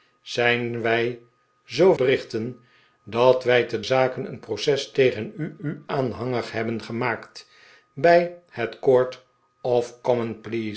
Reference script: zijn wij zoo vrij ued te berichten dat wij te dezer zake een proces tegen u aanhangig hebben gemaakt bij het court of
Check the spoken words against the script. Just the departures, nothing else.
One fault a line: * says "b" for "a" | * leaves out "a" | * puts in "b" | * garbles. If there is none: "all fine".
* leaves out "vrij ued te"
* leaves out "dezer"
* puts in "u"